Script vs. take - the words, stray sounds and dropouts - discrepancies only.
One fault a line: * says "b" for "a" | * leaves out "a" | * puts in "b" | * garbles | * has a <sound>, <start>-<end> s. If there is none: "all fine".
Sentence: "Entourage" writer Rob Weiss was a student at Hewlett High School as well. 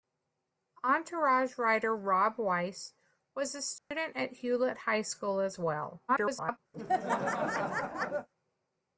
* has a dropout, 3.8-3.9 s
* garbles
* has a laugh, 6.7-8.3 s